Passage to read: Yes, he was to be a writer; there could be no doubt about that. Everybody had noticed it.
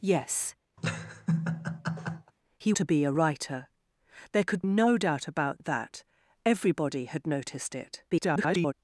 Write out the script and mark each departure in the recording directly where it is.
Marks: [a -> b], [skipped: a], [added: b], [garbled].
Yes, he [skipped: was] to be a writer; there could [skipped: be] no doubt about that. Everybody had noticed it. [garbled]